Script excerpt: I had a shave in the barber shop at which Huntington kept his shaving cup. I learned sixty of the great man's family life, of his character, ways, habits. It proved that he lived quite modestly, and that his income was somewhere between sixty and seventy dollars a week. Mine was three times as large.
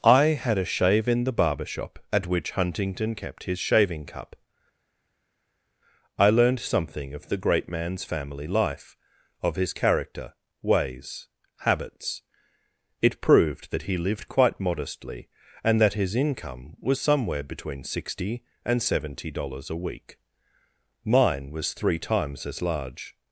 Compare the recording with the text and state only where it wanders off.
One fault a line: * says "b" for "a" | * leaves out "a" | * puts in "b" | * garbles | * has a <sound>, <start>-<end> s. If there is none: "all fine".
* says "something" for "sixty"